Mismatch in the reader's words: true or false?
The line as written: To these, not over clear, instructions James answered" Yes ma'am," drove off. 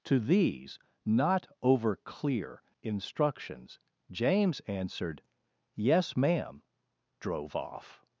false